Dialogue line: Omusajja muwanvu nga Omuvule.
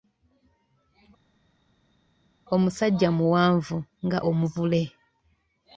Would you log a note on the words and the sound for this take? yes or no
no